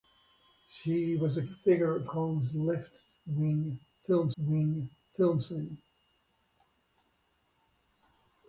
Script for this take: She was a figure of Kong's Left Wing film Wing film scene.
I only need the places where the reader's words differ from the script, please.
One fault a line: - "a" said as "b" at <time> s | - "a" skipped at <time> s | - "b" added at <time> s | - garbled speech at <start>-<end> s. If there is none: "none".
none